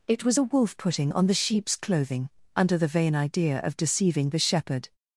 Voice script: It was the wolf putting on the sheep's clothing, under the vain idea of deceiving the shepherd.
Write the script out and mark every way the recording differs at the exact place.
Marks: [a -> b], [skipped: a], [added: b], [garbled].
It was [the -> a] wolf putting on the sheep's clothing, under the vain idea of deceiving the shepherd.